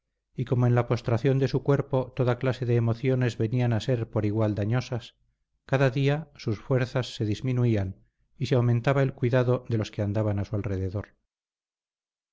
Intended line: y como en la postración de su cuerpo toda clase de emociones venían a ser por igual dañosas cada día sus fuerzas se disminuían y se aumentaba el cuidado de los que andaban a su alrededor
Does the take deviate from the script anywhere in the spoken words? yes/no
no